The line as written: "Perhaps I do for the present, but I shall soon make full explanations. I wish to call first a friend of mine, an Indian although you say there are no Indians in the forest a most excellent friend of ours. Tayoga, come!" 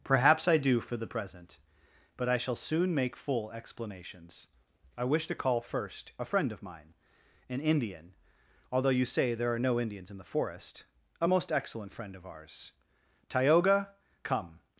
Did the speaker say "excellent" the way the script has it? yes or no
yes